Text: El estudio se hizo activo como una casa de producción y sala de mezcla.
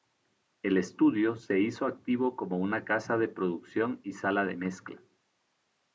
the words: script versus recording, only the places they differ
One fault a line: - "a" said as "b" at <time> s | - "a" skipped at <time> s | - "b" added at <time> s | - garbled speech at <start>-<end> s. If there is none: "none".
none